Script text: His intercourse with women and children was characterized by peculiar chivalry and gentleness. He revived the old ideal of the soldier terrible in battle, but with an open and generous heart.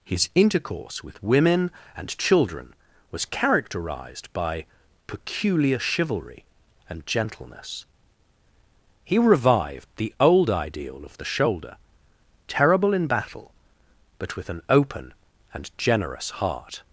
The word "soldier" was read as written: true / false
false